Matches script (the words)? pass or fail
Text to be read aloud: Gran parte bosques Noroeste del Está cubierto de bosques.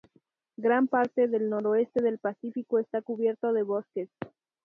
fail